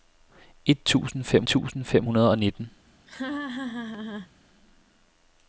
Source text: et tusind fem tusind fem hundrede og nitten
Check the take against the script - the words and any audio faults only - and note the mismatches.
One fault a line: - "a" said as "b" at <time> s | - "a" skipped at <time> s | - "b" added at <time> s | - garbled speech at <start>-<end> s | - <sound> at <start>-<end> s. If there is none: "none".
- laugh at 3.1-4.3 s